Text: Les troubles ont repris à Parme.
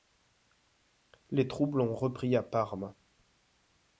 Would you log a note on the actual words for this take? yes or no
no